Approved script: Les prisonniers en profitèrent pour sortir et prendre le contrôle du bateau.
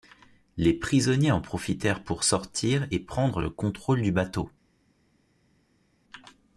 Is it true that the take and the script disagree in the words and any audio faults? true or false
false